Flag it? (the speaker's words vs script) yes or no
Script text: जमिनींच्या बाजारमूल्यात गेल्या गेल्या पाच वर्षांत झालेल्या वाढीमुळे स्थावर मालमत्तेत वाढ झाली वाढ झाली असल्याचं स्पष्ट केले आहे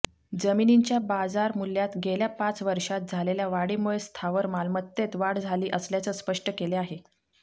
yes